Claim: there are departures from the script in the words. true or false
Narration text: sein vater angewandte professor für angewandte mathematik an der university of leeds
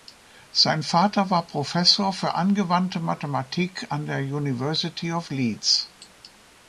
true